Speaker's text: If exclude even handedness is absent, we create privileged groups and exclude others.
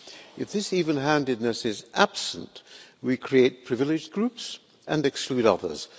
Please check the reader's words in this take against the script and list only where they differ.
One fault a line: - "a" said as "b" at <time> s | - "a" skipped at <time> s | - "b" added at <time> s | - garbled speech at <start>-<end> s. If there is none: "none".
- "exclude" said as "this" at 0.5 s